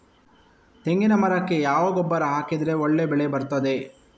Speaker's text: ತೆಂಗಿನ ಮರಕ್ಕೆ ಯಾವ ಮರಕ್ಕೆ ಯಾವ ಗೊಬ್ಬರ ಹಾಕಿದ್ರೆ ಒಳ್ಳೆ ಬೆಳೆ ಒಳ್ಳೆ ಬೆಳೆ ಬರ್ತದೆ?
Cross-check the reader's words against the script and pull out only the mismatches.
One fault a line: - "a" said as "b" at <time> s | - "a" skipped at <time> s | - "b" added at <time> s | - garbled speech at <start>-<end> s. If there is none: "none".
- "ಮರಕ್ಕೆ ಯಾವ" skipped at 1.9 s
- "ಒಳ್ಳೆ ಬೆಳೆ" skipped at 3.3 s